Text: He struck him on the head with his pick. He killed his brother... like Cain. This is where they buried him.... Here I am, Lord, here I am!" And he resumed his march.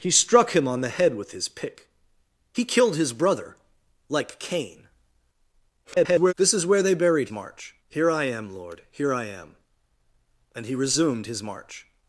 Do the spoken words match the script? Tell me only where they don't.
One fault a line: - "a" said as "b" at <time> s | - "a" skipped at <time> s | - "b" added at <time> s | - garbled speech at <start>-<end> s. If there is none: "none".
- garbled speech at 5.8-6.3 s
- "him" said as "march" at 7.3 s